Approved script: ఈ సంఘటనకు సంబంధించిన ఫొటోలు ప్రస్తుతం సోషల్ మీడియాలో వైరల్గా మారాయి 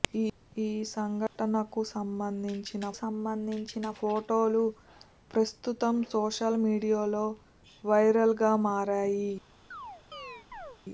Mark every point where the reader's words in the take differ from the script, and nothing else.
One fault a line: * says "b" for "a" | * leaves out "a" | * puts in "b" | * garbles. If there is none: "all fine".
* puts in "సంబంధించిన"